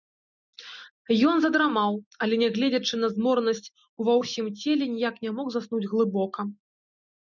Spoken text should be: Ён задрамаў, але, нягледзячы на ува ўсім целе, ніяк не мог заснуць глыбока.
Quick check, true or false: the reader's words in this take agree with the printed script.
false